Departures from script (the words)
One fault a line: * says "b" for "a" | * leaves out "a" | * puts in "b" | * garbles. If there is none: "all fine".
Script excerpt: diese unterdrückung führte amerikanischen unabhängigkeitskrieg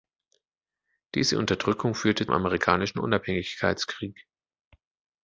all fine